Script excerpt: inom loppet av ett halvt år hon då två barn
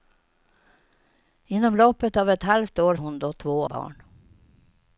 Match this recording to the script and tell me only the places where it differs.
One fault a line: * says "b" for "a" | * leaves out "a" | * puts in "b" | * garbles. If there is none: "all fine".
all fine